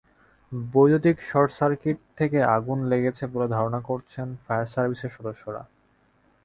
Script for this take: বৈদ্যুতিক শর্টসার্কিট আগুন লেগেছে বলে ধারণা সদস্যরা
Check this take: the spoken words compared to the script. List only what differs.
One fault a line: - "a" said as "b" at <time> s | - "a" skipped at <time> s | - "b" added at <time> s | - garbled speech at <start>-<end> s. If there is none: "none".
- "থেকে" added at 2.2 s
- "করছেন ফায়ার সার্ভিসের" added at 3.9 s